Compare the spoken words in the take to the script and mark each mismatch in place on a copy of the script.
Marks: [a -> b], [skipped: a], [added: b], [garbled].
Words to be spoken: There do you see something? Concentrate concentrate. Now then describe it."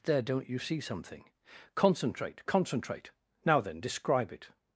There [do -> don't] you see something? Concentrate concentrate. Now then describe it."